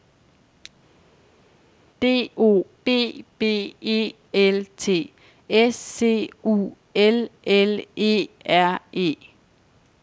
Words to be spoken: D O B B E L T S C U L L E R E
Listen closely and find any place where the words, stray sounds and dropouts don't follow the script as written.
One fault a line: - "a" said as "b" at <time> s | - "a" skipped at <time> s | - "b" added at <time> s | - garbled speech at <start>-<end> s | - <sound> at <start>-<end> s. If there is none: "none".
none